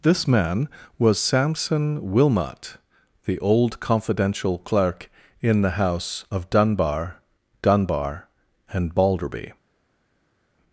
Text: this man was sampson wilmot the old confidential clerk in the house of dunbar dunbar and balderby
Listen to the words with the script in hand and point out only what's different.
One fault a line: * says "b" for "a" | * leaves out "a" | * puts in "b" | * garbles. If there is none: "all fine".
all fine